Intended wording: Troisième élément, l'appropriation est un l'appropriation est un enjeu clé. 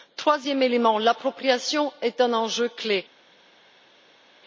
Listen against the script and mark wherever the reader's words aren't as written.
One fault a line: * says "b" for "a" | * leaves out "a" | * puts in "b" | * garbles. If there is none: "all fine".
* leaves out "l'appropriation est un"